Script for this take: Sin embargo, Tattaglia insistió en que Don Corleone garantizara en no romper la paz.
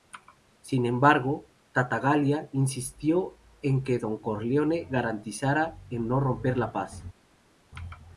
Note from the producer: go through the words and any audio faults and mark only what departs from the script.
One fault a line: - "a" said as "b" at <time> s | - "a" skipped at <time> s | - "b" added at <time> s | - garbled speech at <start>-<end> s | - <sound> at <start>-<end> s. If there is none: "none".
none